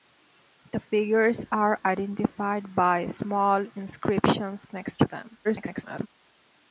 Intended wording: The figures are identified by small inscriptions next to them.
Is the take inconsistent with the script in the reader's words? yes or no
yes